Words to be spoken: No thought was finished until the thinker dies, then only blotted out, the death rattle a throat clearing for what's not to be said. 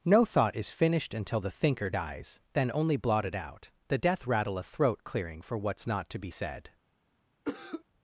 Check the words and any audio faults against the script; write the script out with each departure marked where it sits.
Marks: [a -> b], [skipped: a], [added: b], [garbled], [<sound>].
No thought [was -> is] finished until the thinker dies, then only blotted out, the death rattle a throat clearing for what's not to be said. [cough]